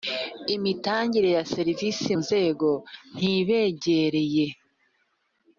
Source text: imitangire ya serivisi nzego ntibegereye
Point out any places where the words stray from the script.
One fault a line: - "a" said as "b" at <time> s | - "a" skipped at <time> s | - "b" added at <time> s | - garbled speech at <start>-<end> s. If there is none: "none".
none